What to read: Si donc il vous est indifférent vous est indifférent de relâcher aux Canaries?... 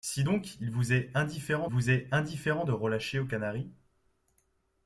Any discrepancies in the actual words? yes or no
no